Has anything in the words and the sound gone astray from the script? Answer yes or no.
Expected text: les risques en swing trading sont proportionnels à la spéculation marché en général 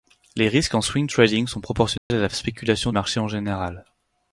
yes